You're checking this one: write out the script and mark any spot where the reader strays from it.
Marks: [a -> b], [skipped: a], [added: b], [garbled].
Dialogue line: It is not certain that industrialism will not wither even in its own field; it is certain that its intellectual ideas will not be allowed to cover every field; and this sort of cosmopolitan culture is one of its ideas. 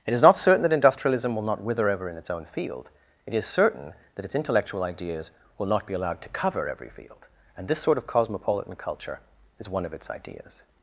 It is not certain that industrialism will not wither [even -> ever] in its own field; it is certain that its intellectual ideas will not be allowed to cover every field; and this sort of cosmopolitan culture is one of its ideas.